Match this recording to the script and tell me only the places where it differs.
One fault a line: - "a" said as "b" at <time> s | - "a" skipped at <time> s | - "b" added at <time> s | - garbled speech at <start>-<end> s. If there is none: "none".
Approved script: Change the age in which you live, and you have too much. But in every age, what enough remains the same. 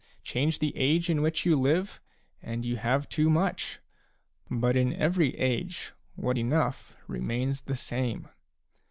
none